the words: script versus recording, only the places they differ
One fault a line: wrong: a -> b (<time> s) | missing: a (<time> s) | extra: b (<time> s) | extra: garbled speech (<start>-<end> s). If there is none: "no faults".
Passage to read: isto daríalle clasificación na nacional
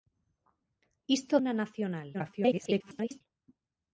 missing: daríalle clasificación (1.4 s)
extra: garbled speech (2.1-3.2 s)